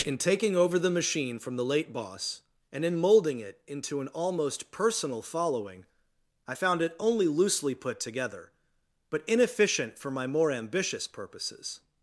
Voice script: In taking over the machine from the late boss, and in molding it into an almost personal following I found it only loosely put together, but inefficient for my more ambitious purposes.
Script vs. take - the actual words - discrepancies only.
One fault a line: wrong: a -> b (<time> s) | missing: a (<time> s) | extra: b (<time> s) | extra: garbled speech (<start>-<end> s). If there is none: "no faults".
no faults